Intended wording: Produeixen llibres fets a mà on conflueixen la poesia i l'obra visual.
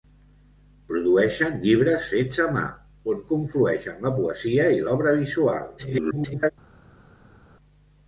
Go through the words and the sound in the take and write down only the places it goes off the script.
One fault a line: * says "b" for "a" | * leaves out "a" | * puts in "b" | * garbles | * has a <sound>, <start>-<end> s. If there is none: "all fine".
* garbles